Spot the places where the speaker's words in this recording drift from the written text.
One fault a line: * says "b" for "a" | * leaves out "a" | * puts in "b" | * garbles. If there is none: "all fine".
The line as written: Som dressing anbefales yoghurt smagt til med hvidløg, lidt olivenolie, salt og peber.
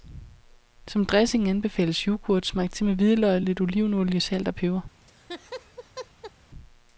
all fine